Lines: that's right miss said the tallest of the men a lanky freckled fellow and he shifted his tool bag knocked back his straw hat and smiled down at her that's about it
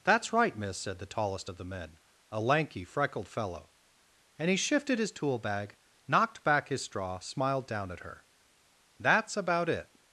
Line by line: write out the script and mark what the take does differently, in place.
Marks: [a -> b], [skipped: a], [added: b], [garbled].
that's right miss said the tallest of the men a lanky freckled fellow and he shifted his tool bag knocked back his straw [skipped: hat and] smiled down at her that's about it